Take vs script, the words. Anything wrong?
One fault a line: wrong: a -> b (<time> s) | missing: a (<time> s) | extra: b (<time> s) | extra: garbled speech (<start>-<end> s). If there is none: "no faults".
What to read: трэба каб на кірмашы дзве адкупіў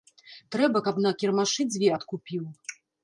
no faults